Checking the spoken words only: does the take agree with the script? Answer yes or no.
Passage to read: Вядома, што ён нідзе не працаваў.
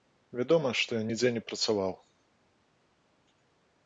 yes